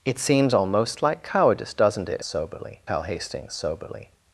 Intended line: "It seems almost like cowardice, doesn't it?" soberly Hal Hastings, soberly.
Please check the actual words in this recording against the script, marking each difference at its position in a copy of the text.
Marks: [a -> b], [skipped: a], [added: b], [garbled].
"It seems almost like cowardice, doesn't it?" soberly Hal Hastings, soberly.